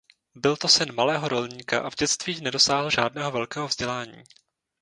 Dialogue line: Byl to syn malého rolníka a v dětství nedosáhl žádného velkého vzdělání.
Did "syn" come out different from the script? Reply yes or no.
no